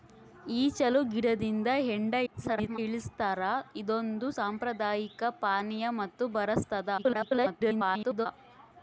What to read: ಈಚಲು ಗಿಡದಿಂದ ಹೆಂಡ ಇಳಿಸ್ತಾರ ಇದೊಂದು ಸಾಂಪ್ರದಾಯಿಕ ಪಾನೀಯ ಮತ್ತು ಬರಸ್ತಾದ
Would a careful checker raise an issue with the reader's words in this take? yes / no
yes